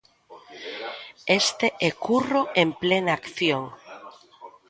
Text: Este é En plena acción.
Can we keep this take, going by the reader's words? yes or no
no